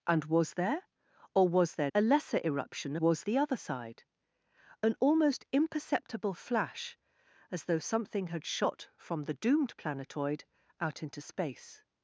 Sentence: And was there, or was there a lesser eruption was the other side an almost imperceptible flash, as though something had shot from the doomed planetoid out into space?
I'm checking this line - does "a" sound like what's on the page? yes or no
yes